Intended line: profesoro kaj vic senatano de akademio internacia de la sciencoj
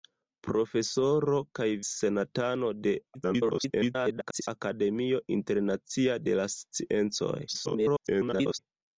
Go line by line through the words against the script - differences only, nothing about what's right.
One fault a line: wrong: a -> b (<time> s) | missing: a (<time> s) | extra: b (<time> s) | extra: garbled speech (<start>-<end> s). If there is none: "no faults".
missing: vic (1.7 s)
extra: garbled speech (3.1-4.5 s)
extra: garbled speech (7.5-8.6 s)